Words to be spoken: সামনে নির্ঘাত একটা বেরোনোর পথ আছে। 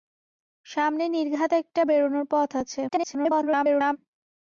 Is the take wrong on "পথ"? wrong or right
right